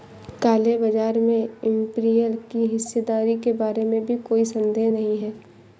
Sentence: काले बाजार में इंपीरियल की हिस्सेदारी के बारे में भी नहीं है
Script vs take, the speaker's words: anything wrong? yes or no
yes